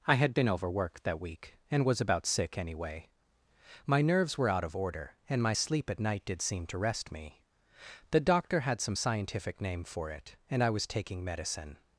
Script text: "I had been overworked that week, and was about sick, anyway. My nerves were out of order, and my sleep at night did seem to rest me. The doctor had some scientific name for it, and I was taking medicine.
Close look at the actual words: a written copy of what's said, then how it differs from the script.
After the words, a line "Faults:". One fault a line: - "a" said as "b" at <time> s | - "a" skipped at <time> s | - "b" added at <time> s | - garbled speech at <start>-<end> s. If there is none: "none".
"I had been overworked that week, and was about sick, anyway. My nerves were out of order, and my sleep at night did seem to rest me. The doctor had some scientific name for it, and I was taking medicine.
Faults:
none